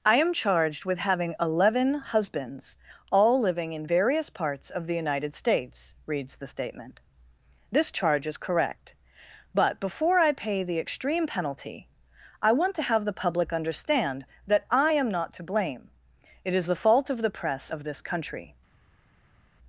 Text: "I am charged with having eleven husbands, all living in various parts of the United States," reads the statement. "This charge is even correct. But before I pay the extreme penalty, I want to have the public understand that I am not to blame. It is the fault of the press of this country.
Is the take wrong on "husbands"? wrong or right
right